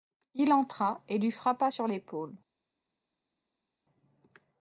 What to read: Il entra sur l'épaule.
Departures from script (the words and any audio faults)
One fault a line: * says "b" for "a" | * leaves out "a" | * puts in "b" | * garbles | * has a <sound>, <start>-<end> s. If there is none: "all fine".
* puts in "et lui frappa"